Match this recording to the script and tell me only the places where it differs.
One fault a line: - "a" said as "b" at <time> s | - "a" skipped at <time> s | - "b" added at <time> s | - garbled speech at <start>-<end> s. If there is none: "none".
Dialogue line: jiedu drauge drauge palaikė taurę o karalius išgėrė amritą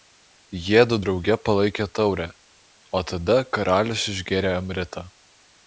- "drauge" skipped at 1.4 s
- "tada" added at 3.1 s